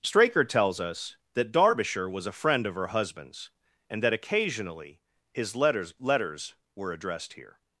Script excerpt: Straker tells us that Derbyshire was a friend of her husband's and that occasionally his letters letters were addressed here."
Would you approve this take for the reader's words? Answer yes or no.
yes